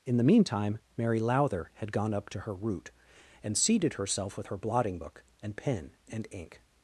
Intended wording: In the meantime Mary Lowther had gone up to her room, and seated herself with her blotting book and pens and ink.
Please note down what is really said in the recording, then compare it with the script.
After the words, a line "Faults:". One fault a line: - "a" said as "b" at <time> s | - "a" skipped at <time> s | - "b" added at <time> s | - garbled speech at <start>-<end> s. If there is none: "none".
In the meantime Mary Lowther had gone up to her root, and seated herself with her blotting book and pen and ink.
Faults:
- "room" said as "root" at 2.5 s
- "pens" said as "pen" at 5.6 s